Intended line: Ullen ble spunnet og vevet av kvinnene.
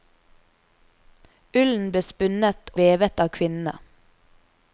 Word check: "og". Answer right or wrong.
wrong